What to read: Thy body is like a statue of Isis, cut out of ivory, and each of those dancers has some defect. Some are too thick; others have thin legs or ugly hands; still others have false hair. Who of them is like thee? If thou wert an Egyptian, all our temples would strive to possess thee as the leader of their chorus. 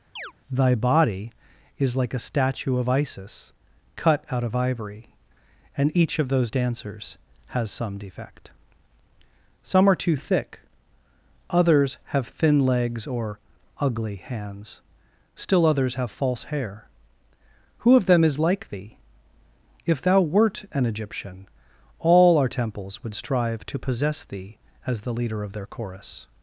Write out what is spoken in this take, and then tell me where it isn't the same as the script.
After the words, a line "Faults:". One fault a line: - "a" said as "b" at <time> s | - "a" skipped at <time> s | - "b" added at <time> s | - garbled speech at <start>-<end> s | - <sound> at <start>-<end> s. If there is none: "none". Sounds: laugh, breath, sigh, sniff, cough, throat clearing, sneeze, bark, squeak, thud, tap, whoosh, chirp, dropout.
Thy body is like a statue of Isis, cut out of ivory, and each of those dancers has some defect. Some are too thick; others have thin legs or ugly hands; still others have false hair. Who of them is like thee? If thou wert an Egyptian, all our temples would strive to possess thee as the leader of their chorus.
Faults:
- chirp at 0.2-0.3 s